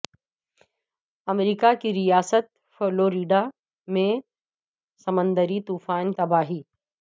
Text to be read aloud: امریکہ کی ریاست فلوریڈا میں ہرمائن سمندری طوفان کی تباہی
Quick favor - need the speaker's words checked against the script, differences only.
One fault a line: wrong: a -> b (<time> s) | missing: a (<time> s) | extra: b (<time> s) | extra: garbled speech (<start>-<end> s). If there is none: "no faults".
missing: ہرمائن (4.1 s)
missing: کی (6.1 s)